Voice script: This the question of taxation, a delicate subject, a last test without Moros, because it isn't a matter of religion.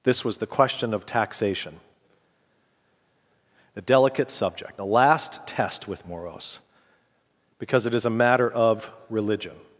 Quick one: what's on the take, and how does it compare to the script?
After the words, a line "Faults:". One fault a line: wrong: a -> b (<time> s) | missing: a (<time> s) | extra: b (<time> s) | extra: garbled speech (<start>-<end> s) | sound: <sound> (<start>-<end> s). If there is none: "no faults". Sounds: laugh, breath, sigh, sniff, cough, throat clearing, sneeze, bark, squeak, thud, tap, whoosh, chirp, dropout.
This was the question of taxation, a delicate subject, a last test with Moros, because it is a matter of religion.
Faults:
extra: was (0.2 s)
wrong: without -> with (5.9 s)
wrong: isn't -> is (7.9 s)